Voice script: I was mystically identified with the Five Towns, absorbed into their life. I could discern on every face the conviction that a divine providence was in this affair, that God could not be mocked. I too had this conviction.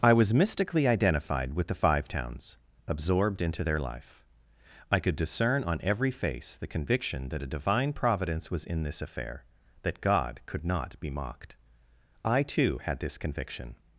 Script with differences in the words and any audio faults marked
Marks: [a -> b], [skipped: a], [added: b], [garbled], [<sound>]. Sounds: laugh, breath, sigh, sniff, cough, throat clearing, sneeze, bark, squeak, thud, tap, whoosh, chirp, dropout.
I was mystically identified with the Five Towns, absorbed into their life. I could discern on every face the conviction that a divine providence was in this affair, that God could not be mocked. I too had this conviction.